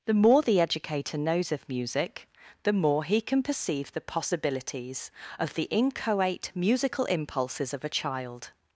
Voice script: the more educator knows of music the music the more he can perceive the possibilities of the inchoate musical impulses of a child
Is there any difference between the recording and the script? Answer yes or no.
yes